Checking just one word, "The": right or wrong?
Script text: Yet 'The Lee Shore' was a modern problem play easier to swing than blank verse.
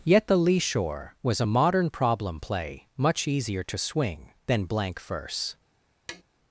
right